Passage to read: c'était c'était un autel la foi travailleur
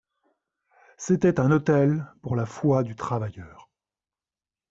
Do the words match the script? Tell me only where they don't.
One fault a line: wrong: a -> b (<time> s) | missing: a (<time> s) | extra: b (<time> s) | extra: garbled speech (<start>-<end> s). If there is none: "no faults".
missing: c'était (1.4 s)
extra: pour (2.2 s)
extra: du (2.8 s)